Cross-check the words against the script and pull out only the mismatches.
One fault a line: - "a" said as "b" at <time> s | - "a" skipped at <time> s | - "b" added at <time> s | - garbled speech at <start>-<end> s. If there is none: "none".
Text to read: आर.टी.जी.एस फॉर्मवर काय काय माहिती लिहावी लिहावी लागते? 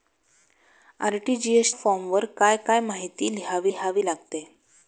none